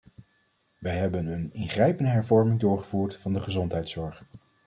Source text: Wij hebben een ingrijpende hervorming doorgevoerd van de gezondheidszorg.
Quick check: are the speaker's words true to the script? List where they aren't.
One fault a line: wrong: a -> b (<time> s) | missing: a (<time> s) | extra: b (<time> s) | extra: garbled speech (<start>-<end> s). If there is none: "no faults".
no faults